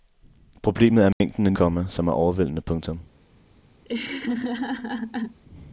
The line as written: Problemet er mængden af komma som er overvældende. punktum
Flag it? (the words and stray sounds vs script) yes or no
yes